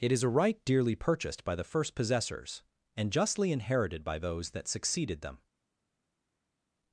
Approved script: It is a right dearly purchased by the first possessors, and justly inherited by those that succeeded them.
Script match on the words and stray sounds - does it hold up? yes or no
yes